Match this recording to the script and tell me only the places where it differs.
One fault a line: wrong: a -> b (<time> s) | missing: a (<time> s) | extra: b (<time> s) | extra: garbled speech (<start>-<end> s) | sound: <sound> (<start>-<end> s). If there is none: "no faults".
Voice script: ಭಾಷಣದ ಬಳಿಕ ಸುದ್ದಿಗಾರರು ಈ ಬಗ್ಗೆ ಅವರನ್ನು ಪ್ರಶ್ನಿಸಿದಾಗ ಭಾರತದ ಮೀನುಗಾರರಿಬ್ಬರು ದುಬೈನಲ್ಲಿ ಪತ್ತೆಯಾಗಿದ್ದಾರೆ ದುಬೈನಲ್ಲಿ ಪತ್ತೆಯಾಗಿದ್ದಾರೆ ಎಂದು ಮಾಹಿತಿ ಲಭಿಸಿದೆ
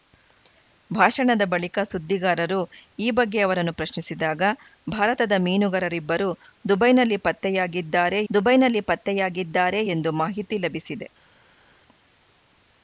no faults